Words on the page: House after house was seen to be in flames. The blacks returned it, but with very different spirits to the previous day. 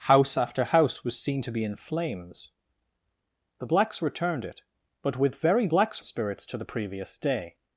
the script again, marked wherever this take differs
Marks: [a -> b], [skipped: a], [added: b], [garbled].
House after house was seen to be in flames. The blacks returned it, but with very [different -> blacks] spirits to the previous day.